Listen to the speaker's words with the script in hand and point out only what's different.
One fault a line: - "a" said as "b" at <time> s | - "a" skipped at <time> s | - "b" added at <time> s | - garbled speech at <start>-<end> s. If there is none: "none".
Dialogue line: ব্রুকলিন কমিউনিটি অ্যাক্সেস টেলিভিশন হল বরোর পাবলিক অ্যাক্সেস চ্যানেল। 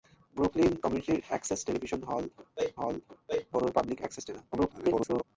- "হল" added at 2.8 s
- garbled speech at 4.5-5.2 s